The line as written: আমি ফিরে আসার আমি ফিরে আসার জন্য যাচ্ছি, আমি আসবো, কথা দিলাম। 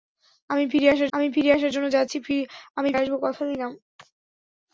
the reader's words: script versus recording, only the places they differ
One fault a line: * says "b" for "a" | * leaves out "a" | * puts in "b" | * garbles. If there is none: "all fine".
all fine